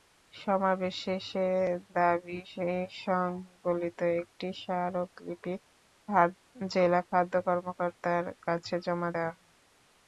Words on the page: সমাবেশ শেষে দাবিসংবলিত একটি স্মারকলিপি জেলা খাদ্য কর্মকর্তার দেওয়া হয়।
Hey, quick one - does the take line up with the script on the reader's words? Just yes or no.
no